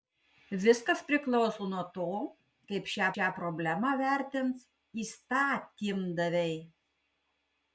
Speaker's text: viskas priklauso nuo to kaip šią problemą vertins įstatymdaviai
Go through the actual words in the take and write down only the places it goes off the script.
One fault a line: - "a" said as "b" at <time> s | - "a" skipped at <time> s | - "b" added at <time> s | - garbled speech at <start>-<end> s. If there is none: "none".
- "šią" added at 3.1 s